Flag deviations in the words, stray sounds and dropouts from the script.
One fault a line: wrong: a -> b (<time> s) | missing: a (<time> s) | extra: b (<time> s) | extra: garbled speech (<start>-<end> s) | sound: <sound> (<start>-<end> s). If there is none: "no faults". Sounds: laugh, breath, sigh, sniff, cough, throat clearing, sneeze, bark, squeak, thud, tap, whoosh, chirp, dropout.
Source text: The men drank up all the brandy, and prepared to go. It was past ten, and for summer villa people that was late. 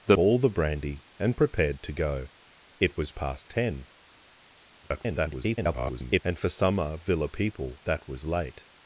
missing: men drank up (0.2 s)
extra: garbled speech (4.8-6.2 s)